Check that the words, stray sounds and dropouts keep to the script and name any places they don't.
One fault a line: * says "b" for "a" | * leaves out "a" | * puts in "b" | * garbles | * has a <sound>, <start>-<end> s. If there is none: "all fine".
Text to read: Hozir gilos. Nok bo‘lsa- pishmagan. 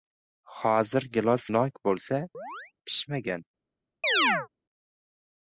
* has a chirp, 2.3-2.7 s
* has a chirp, 4.0-4.5 s